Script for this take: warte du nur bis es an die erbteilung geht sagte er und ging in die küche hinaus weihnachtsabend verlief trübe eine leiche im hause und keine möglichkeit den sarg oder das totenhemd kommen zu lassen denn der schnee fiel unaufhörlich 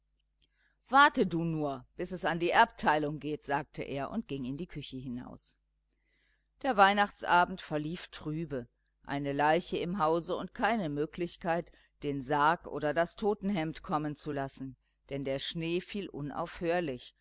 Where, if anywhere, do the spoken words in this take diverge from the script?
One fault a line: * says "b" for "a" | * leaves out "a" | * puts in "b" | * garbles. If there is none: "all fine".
* puts in "der"